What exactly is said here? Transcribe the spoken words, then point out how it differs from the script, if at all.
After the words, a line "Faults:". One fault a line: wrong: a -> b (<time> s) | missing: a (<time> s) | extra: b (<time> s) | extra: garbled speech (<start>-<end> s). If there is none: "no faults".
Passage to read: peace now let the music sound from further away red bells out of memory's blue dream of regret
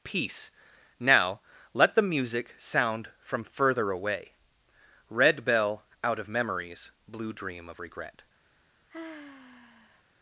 peace now let the music sound from further away red bell out of memory's blue dream of regret
Faults:
wrong: bells -> bell (5.5 s)